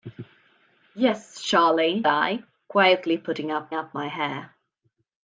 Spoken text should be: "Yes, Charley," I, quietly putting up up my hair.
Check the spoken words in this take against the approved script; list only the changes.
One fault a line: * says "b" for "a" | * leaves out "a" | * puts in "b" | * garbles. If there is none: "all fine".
all fine